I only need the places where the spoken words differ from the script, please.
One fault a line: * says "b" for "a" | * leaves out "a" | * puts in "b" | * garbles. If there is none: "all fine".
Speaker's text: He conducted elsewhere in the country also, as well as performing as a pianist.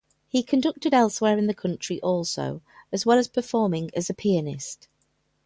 all fine